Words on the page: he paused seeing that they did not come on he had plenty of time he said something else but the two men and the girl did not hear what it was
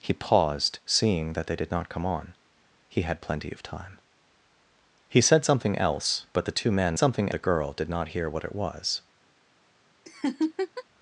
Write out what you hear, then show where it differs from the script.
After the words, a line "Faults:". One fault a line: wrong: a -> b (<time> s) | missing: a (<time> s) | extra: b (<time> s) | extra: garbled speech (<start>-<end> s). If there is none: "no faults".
he paused seeing that they did not come on he had plenty of time he said something else but the two men something the girl did not hear what it was
Faults:
wrong: and -> something (7.0 s)